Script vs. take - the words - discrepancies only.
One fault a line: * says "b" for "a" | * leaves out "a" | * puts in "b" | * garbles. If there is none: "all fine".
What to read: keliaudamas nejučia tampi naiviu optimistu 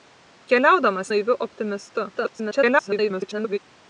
* leaves out "nejučia tampi"
* garbles